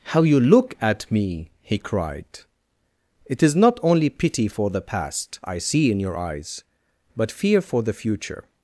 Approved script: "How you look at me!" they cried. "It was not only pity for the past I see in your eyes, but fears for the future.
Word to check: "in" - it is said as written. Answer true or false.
true